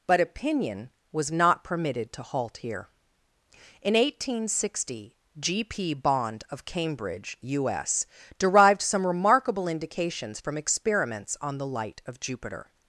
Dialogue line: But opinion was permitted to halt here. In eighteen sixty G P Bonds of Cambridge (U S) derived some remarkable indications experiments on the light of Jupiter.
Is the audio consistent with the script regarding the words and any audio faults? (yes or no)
no